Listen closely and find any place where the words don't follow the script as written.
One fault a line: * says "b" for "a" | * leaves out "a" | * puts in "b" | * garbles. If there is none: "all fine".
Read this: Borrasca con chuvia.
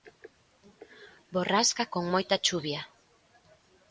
* puts in "moita"